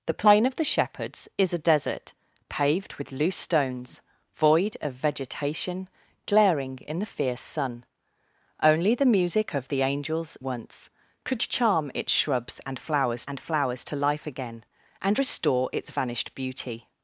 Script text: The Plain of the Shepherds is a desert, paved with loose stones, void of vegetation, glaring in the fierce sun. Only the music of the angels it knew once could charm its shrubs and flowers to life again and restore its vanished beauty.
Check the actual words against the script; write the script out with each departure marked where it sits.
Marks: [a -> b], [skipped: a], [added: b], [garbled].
The Plain of the Shepherds is a desert, paved with loose stones, void of vegetation, glaring in the fierce sun. Only the music of the angels [skipped: it knew] once could charm its shrubs and flowers [added: and flowers] to life again and restore its vanished beauty.